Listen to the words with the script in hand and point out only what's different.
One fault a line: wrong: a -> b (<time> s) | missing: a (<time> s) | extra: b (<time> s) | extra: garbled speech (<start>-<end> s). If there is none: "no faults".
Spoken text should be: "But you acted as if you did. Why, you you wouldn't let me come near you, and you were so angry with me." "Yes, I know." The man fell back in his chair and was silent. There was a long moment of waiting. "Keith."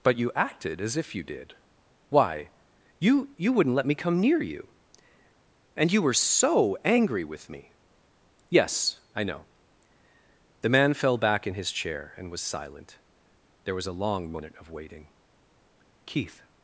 no faults